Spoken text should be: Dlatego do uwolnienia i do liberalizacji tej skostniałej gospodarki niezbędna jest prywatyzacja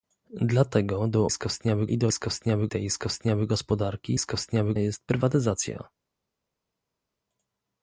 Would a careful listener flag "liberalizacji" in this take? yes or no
yes